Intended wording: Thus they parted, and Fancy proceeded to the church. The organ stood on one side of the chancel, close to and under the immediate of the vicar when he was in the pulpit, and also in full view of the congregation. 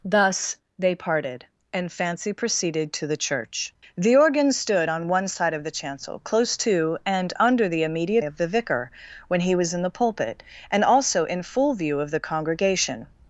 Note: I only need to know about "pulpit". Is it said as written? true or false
true